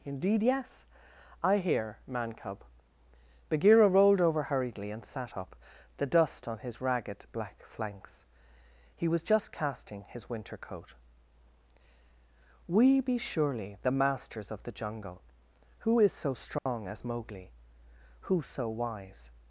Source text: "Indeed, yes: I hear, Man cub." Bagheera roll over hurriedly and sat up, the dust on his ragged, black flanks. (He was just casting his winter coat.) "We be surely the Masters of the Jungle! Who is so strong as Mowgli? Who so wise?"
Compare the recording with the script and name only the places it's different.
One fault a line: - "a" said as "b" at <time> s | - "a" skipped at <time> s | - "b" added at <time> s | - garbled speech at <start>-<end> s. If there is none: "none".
- "roll" said as "rolled" at 3.9 s